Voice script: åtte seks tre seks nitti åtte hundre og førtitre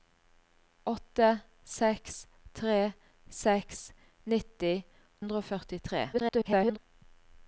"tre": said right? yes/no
yes